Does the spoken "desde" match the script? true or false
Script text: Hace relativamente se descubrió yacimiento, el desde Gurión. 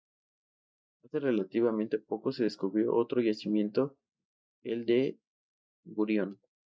false